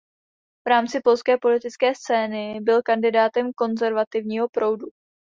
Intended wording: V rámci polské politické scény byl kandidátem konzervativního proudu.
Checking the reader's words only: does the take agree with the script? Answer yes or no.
yes